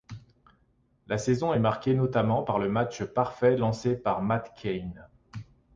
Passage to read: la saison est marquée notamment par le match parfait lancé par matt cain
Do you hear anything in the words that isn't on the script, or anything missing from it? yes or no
no